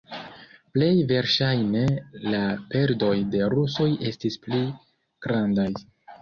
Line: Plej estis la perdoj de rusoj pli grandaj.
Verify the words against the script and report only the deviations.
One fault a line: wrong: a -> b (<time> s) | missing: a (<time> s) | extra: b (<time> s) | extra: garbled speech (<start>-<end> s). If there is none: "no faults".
wrong: estis -> verŝajne (1.1 s)
extra: estis (4.1 s)